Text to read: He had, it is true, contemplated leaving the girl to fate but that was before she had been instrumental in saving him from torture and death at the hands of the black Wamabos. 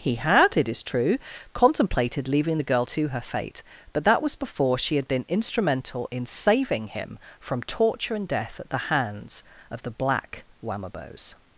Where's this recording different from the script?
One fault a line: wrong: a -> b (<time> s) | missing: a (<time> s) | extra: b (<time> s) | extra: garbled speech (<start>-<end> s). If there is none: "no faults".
extra: her (3.1 s)